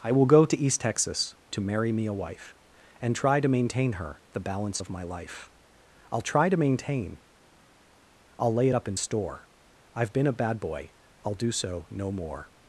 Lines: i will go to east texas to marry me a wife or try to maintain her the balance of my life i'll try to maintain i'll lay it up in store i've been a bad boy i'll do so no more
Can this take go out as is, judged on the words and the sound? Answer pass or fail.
fail